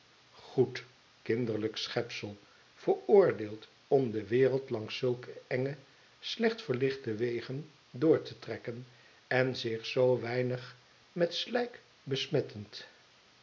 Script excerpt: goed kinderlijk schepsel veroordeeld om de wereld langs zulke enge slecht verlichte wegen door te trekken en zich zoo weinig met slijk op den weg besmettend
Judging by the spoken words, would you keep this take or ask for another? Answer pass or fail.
fail